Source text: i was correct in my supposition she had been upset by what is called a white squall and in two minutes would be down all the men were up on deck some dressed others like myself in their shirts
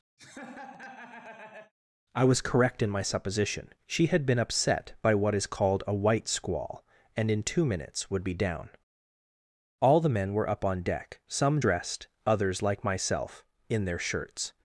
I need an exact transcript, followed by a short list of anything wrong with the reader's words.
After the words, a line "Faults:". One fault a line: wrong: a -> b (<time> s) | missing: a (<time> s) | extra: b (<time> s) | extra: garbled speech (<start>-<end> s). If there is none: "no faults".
i was correct in my supposition she had been upset by what is called a white squall and in two minutes would be down all the men were up on deck some dressed others like myself in their shirts
Faults:
no faults